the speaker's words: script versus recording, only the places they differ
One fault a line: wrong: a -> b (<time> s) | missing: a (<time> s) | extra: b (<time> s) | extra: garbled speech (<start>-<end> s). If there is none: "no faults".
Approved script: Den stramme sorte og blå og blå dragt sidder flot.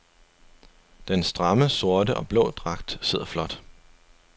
missing: og blå (2.5 s)